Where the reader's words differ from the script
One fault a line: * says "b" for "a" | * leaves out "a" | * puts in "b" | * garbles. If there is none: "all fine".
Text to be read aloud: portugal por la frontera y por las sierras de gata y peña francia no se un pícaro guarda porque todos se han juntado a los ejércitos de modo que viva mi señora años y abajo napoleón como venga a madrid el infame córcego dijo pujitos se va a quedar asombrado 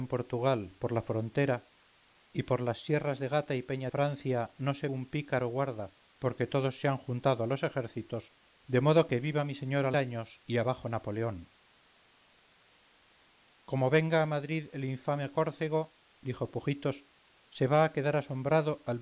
all fine